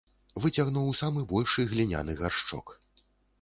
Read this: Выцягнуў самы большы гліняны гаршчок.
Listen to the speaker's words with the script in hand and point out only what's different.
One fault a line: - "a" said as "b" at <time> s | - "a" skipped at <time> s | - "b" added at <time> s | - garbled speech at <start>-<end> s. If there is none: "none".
none